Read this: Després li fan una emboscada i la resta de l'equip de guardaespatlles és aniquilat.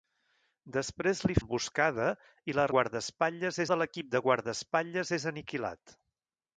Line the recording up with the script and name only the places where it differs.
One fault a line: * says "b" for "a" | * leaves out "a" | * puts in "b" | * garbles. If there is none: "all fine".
* leaves out "fan una"
* says "guardaespatlles" for "resta"